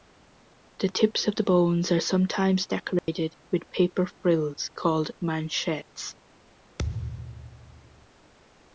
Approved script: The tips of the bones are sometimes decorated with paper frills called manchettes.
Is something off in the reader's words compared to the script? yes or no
no